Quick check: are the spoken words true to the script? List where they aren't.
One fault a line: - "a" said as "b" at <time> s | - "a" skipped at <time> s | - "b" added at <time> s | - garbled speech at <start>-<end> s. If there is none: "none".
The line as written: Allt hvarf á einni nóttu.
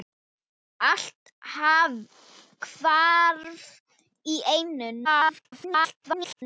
- garbled speech at 5.0-6.4 s